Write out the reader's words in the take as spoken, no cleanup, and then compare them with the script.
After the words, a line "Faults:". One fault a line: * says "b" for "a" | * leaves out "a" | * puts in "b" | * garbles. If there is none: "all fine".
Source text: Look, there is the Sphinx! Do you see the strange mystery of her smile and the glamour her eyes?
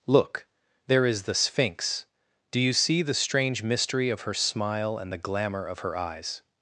Look, there is the Sphinx! Do you see the strange mystery of her smile and the glamour of her eyes?
Faults:
* puts in "of"